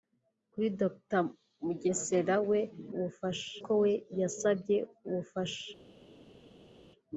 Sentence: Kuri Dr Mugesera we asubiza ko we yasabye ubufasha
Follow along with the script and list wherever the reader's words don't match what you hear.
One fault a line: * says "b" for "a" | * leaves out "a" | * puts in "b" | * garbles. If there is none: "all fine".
* says "ubufasha" for "asubiza"